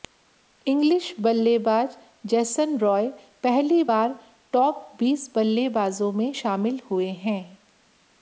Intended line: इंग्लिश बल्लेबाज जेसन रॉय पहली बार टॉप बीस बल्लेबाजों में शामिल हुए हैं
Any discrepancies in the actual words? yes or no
no